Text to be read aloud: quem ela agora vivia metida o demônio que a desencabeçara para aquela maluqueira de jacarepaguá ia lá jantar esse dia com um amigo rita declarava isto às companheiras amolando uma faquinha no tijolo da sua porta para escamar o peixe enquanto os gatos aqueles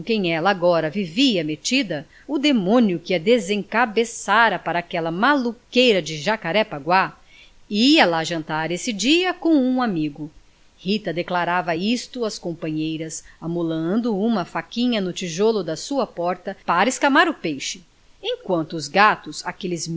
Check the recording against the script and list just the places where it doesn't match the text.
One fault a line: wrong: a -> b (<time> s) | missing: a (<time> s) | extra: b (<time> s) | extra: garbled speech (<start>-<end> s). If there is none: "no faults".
no faults